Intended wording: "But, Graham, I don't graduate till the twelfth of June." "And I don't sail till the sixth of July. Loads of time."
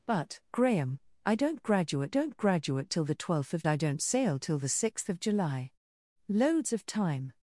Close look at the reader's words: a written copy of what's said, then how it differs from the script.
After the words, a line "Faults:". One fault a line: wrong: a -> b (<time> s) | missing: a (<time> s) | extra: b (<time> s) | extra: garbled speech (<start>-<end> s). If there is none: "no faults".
"But, Graham, I don't graduate don't graduate till the twelfth of I don't sail till the sixth of July. Loads of time."
Faults:
extra: don't graduate (2.1 s)
missing: June And (3.7 s)